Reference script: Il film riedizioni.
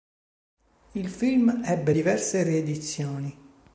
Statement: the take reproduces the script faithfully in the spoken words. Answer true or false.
false